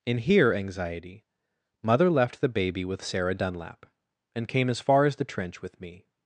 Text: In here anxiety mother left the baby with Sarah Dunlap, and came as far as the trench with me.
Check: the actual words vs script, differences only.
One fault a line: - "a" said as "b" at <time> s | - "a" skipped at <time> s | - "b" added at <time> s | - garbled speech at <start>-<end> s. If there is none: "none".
none